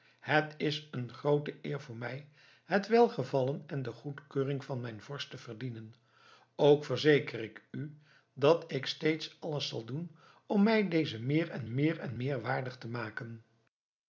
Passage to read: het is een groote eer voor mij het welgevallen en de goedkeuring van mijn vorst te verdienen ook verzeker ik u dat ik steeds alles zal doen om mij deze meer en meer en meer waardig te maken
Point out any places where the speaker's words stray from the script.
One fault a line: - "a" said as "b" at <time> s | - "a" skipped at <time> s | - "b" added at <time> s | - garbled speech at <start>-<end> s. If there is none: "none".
none